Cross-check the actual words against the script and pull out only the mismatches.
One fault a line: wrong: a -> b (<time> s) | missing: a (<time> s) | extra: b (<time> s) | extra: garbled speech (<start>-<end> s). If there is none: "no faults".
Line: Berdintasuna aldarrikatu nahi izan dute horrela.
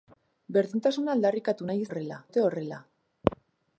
wrong: izan -> horrela (1.9 s)